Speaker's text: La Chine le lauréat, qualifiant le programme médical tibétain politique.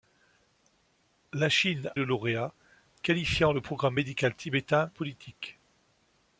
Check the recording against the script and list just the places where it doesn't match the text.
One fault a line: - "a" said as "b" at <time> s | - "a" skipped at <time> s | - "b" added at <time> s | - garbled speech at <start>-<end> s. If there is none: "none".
none